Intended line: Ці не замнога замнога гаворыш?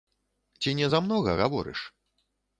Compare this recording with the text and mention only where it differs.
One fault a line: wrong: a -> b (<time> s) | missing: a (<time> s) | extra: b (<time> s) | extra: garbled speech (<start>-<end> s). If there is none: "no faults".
missing: замнога (1.4 s)